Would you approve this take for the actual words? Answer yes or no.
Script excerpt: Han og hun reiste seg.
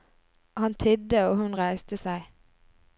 no